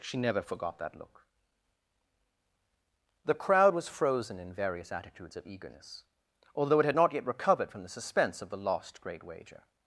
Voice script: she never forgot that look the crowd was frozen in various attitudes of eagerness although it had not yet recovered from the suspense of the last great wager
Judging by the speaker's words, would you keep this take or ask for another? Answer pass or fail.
fail